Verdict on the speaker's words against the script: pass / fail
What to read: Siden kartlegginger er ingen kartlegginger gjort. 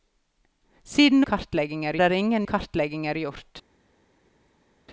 pass